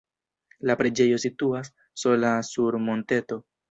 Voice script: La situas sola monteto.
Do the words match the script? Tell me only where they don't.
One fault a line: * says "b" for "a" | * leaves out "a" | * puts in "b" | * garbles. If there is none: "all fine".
* puts in "preĝejo"
* puts in "sur"